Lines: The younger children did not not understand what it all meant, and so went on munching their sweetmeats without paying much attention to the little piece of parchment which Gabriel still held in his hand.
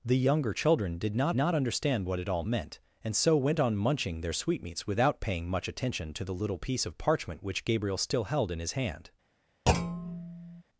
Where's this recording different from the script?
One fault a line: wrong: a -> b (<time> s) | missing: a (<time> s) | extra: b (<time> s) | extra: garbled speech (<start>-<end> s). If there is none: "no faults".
no faults